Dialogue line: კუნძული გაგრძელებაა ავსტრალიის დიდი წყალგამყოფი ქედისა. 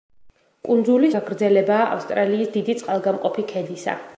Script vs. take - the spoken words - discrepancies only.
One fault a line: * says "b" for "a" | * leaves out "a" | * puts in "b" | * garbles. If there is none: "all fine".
all fine